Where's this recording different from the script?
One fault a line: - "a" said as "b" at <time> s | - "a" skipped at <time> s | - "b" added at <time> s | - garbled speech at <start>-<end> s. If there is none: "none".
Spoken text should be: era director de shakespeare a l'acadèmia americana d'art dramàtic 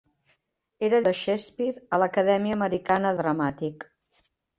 - "director" skipped at 1.0 s
- "d'art" skipped at 3.1 s